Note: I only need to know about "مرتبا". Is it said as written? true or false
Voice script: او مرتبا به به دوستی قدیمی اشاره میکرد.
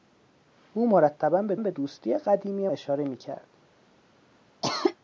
true